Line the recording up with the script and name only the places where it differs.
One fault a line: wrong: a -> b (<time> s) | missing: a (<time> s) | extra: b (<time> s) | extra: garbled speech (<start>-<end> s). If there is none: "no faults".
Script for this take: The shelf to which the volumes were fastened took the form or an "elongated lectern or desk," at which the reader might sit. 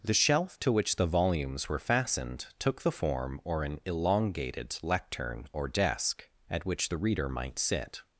no faults